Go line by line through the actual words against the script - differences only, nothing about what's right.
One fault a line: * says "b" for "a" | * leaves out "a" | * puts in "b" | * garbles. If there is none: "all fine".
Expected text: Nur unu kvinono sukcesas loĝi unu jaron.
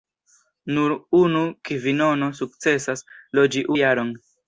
* leaves out "unu"